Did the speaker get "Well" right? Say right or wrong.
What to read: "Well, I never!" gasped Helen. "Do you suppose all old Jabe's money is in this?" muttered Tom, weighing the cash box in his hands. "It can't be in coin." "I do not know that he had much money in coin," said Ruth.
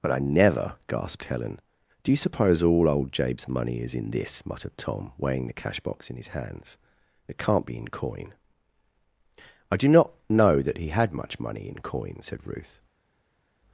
wrong